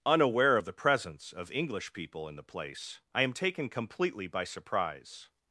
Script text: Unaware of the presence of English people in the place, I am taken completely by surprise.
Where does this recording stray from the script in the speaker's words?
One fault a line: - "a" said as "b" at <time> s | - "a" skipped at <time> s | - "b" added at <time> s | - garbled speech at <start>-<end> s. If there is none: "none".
none